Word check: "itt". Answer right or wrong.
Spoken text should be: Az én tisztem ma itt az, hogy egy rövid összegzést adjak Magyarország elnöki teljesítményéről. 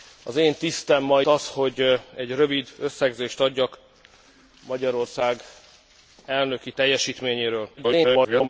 wrong